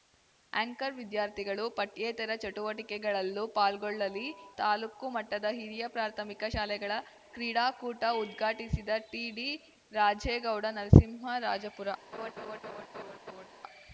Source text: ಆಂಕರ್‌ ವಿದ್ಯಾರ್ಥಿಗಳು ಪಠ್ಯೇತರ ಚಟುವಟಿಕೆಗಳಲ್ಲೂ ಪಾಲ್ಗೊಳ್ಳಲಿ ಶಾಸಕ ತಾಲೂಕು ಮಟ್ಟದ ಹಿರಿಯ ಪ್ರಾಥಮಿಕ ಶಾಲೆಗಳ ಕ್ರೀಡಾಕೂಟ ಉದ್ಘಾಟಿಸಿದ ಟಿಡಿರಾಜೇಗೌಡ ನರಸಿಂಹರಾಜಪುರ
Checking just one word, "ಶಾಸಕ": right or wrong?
wrong